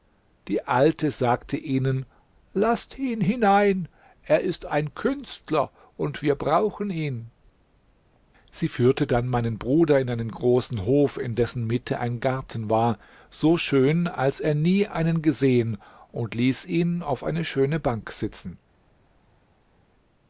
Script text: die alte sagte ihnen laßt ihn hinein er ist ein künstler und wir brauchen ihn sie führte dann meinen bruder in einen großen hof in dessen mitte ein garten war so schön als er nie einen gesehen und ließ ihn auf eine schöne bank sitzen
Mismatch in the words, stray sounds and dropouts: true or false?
false